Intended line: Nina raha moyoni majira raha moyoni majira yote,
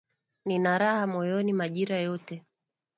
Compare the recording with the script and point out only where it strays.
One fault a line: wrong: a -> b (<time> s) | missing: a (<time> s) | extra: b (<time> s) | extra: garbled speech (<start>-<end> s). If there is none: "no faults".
missing: raha moyoni majira (2.0 s)